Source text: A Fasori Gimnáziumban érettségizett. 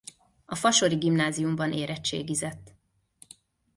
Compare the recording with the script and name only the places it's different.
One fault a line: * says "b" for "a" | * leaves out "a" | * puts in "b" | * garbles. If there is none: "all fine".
all fine